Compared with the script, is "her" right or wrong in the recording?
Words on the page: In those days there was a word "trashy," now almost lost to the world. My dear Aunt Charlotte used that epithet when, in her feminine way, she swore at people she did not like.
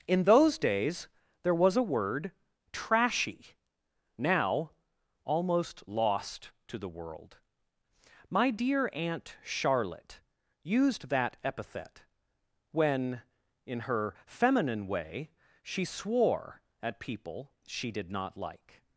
right